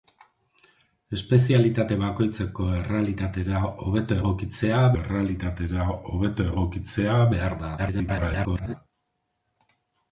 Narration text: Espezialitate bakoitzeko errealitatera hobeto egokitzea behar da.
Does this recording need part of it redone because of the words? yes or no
yes